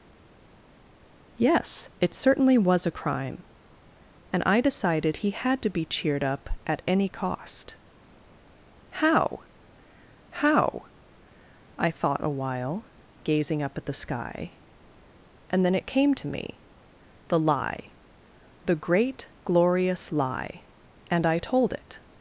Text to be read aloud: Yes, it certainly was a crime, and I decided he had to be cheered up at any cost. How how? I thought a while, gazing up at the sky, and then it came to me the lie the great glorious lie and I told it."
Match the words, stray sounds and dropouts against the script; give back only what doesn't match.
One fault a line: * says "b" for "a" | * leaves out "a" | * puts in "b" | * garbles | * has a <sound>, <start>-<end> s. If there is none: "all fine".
all fine